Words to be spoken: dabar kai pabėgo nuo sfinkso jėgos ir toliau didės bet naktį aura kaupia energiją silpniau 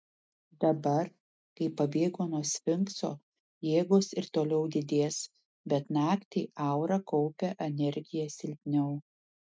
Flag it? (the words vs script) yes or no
no